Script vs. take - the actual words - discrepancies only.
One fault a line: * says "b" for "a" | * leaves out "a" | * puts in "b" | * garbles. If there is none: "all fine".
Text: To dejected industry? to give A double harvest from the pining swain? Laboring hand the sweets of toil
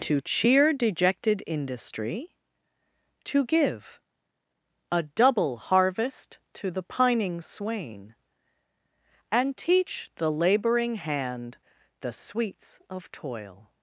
* puts in "cheer"
* says "to" for "from"
* puts in "And teach the"